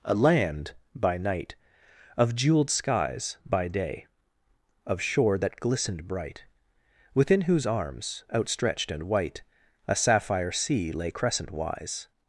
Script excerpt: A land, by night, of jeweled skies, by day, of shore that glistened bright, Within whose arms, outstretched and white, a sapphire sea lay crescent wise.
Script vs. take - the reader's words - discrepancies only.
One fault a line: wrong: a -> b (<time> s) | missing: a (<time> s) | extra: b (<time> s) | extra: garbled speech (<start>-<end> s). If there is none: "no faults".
no faults